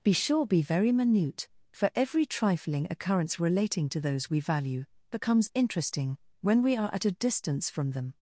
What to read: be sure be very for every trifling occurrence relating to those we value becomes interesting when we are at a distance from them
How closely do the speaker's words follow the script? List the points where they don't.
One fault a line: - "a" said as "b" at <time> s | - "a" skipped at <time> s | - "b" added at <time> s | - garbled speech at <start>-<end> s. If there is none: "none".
- "minute" added at 0.9 s